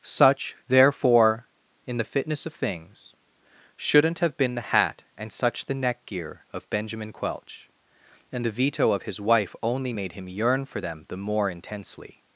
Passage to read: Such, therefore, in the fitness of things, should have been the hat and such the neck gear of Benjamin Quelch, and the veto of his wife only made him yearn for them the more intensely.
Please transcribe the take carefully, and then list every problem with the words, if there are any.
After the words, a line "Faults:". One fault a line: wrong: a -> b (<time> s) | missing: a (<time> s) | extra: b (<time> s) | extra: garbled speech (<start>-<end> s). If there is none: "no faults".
Such, therefore, in the fitness of things, shouldn't have been the hat and such the neck gear of Benjamin Quelch, and the veto of his wife only made him yearn for them the more intensely.
Faults:
wrong: should -> shouldn't (3.8 s)